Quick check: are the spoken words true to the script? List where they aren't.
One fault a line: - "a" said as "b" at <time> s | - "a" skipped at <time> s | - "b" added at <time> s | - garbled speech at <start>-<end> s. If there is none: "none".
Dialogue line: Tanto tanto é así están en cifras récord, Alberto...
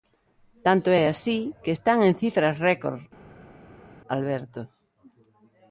- "tanto" skipped at 0.9 s
- "que" added at 1.6 s